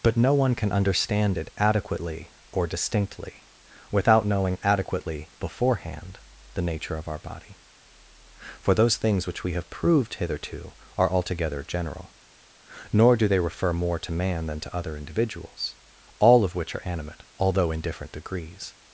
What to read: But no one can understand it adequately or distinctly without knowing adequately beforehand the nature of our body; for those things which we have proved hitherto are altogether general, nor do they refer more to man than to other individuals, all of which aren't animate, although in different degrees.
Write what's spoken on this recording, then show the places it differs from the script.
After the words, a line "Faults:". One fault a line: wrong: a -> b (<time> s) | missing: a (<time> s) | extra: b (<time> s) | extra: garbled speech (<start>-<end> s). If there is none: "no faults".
But no one can understand it adequately or distinctly without knowing adequately beforehand the nature of our body; for those things which we have proved hitherto are altogether general, nor do they refer more to man than to other individuals, all of which are animate, although in different degrees.
Faults:
wrong: aren't -> are (16.8 s)